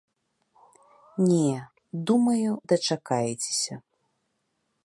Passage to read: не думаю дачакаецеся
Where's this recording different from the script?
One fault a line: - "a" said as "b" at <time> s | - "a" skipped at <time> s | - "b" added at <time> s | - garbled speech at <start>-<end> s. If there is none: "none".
none